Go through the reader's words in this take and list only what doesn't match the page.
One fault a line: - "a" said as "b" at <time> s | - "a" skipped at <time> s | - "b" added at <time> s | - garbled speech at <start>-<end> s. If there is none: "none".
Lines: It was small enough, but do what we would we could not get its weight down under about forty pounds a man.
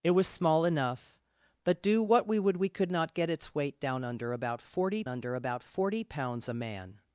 - "under about forty" added at 5.1 s